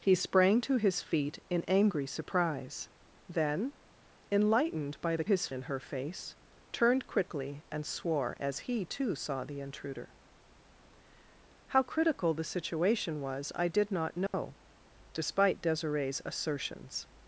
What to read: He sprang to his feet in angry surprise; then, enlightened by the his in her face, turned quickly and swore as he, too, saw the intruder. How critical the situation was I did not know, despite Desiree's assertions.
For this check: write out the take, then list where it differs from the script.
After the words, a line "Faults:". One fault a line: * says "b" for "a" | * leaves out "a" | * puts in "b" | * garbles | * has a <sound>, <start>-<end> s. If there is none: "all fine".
He sprang to his feet in angry surprise; then, enlightened by the his in her face, turned quickly and swore as he, too, saw the intruder. How critical the situation was I did not know, despite Desiree's assertions.
Faults:
* has a dropout, 14.3-14.3 s